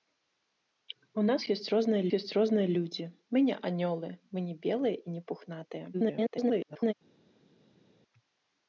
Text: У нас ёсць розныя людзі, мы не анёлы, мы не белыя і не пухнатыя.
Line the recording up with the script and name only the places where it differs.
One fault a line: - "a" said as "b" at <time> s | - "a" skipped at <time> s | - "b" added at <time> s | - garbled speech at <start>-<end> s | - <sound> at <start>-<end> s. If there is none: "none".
- "ёсць розныя" added at 2.2 s
- garbled speech at 5.9-6.9 s